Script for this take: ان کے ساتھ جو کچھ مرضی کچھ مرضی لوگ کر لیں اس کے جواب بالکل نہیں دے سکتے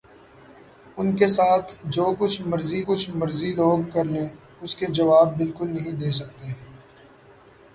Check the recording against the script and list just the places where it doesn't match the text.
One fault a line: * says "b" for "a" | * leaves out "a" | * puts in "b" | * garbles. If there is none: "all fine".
all fine